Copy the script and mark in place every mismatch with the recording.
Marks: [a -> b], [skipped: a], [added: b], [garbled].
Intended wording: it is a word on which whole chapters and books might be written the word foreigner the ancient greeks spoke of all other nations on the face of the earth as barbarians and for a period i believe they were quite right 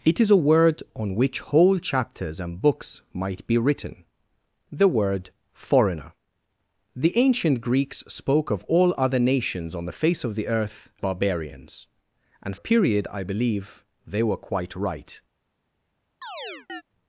it is a word on which whole chapters and books might be written the word foreigner the ancient greeks spoke of all other nations on the face of the earth [skipped: as] barbarians and [skipped: for] a period i believe they were quite right